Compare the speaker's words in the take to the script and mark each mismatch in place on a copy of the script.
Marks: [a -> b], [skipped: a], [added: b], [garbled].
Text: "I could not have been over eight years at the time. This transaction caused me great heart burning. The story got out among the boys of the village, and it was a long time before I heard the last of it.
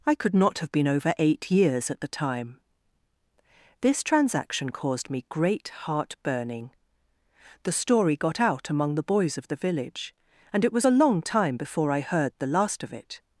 "I could not have been over eight years at the time. This transaction caused me great heart burning. The story got out among the boys of the village, and it was a long time before I heard the last of it.